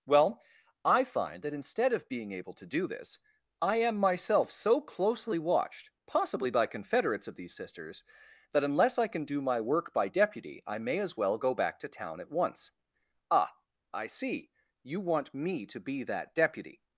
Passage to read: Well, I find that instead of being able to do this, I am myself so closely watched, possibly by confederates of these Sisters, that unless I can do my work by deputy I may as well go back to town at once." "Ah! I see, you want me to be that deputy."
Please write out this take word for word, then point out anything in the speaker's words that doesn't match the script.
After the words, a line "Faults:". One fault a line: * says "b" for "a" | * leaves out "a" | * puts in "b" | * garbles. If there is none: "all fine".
Well, I find that instead of being able to do this, I am myself so closely watched, possibly by confederates of these Sisters, that unless I can do my work by deputy I may as well go back to town at once." "Ah! I see, you want me to be that deputy."
Faults:
all fine